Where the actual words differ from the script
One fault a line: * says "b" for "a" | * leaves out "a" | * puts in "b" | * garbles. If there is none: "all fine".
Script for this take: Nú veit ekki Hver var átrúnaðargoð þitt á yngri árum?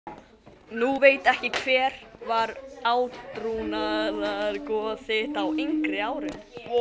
all fine